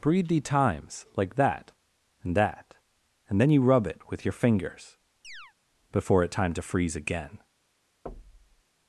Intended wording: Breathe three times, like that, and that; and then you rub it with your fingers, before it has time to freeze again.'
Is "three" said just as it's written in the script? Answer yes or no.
no